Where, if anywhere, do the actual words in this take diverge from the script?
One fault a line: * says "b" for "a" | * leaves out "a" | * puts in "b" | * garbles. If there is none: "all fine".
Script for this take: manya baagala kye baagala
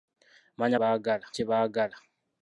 all fine